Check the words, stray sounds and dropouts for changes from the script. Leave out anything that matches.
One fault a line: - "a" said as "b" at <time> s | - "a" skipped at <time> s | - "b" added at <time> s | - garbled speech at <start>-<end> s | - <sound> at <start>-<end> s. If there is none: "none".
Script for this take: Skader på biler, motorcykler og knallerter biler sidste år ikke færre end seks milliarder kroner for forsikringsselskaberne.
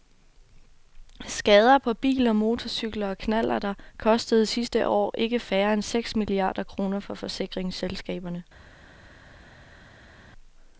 - "biler" said as "kostede" at 4.0 s